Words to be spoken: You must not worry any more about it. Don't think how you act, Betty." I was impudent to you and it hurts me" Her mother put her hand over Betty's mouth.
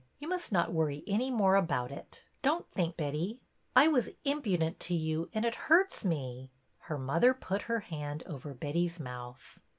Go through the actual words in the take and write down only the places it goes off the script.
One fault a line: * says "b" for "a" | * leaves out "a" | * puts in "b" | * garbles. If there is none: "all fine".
* leaves out "how you act"